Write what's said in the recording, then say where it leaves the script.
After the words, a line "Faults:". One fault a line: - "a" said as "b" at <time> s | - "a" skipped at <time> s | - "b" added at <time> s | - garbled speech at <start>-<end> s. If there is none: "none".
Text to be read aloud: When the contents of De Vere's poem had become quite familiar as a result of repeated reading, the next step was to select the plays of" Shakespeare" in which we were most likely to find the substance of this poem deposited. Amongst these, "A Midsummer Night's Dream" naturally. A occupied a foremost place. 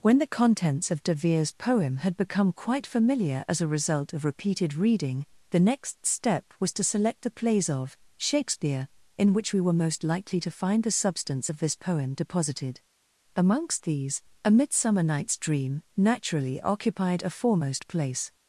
When the contents of De Vere's poem had become quite familiar as a result of repeated reading, the next step was to select the plays of" Shakespeare" in which we were most likely to find the substance of this poem deposited. Amongst these, "A Midsummer Night's Dream" naturally. occupied a foremost place.
Faults:
- "A" skipped at 16.6 s